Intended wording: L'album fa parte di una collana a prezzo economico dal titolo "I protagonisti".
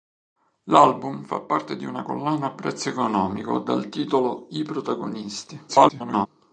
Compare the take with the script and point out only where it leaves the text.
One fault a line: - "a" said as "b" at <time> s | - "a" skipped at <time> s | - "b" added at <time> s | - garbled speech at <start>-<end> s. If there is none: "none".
- garbled speech at 5.7-6.3 s